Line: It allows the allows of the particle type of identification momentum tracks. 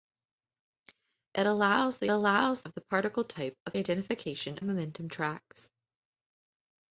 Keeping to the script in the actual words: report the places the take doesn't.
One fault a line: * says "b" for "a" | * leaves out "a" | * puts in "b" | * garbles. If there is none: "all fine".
all fine